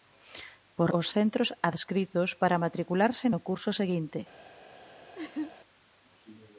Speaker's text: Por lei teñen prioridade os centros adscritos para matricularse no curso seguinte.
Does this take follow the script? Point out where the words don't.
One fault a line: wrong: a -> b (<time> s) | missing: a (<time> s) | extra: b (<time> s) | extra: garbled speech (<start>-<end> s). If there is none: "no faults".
missing: lei teñen prioridade (0.9 s)